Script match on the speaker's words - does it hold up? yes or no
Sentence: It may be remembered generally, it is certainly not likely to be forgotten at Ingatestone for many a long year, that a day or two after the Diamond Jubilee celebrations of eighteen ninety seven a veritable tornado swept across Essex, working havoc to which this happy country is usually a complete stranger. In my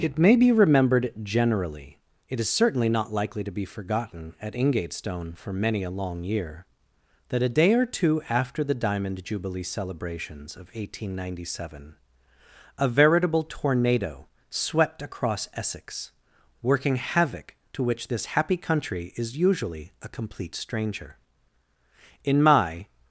yes